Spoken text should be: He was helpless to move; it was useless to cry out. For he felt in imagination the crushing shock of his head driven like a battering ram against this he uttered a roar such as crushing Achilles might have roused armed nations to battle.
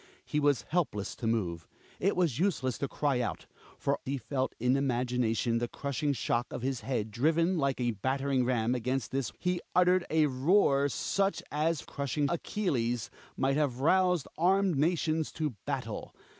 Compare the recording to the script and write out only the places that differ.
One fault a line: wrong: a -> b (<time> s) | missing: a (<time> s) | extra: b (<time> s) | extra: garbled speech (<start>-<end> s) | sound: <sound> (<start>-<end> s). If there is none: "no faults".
no faults